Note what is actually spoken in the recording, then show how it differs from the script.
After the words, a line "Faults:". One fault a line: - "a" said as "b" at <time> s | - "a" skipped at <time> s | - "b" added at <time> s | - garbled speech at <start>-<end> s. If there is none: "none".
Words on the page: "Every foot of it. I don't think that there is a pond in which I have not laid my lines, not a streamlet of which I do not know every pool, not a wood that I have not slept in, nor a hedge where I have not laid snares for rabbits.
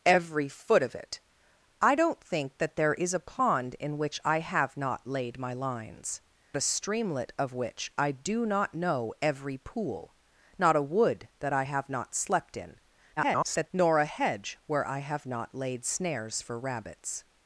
"Every foot of it. I don't think that there is a pond in which I have not laid my lines, a streamlet of which I do not know every pool, not a wood that I have not slept in, [garbled] nor a hedge where I have not laid snares for rabbits.
Faults:
- "not" skipped at 6.2 s
- garbled speech at 13.2-13.7 s